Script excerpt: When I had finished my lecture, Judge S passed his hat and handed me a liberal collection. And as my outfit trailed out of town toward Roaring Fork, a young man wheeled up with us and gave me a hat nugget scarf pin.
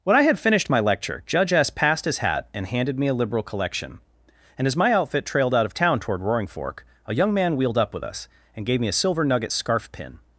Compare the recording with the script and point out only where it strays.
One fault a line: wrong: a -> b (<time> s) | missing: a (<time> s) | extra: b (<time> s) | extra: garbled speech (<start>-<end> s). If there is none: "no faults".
wrong: hat -> silver (8.9 s)